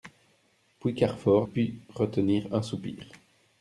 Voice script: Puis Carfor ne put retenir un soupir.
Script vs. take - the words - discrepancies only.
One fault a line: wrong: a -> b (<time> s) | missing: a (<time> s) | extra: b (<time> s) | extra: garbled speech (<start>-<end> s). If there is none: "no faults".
missing: ne (1.5 s)